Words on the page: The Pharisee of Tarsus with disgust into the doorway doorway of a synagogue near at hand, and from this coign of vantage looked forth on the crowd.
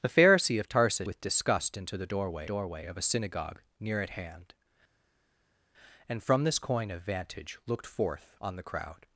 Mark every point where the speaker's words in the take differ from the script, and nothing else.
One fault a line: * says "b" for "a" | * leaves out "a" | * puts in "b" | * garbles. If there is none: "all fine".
all fine